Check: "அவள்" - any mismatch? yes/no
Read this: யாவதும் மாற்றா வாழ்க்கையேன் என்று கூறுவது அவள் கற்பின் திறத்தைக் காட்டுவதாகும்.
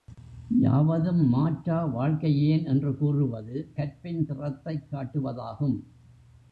yes